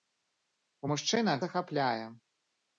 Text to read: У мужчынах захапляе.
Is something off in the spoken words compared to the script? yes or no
no